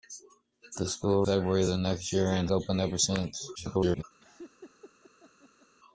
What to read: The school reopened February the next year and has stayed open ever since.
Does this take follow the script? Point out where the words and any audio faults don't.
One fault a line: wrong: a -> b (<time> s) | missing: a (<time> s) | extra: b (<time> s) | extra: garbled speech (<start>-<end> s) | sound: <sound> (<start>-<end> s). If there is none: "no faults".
missing: reopened (1.2 s)
missing: has stayed (2.5 s)
extra: garbled speech (3.6-4.0 s)
sound: laugh (4.2-5.7 s)